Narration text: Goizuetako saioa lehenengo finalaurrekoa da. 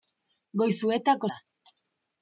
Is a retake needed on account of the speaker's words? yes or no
yes